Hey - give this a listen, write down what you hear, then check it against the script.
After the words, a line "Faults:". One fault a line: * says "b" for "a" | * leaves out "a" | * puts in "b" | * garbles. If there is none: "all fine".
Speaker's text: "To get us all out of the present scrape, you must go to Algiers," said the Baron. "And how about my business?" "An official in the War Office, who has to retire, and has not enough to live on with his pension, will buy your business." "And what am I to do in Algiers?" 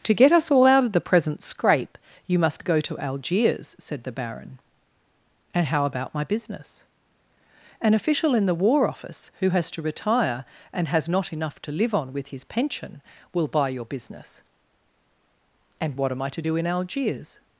"To get us all out of the present scrape, you must go to Algiers," said the Baron. "And how about my business?" "An official in the War Office, who has to retire, and has not enough to live on with his pension, will buy your business." "And what am I to do in Algiers?"
Faults:
all fine